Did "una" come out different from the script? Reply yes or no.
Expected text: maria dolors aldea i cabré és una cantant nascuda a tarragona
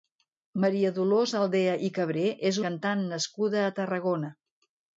yes